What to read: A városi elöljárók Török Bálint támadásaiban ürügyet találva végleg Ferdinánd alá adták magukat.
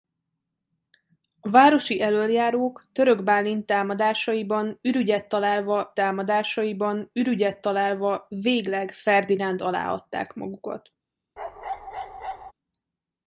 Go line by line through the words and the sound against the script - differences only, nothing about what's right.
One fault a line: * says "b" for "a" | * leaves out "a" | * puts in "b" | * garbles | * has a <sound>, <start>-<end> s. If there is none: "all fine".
* puts in "támadásaiban ürügyet találva"
* has a bark, 11.4-12.5 s